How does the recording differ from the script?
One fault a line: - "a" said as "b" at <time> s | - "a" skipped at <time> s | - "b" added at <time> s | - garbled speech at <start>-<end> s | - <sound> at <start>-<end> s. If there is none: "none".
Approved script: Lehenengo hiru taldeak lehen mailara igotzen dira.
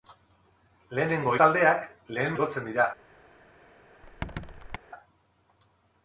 - "hiru" skipped at 1.3 s
- "mailara" skipped at 2.4 s
- squeak at 4.0-4.8 s